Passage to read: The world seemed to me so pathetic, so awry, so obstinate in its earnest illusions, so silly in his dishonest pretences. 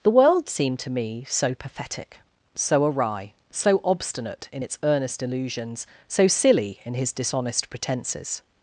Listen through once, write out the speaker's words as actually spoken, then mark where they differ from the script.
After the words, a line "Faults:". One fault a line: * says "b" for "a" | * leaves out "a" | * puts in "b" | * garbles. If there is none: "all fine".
The world seemed to me so pathetic, so awry, so obstinate in its earnest illusions, so silly in his dishonest pretences.
Faults:
all fine